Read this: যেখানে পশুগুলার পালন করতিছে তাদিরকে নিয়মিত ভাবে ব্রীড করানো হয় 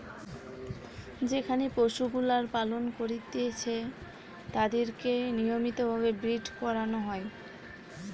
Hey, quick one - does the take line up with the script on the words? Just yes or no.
yes